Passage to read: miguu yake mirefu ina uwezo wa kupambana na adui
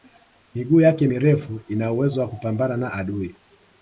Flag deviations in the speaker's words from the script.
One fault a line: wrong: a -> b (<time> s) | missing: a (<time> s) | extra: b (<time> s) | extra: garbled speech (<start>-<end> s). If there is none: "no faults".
no faults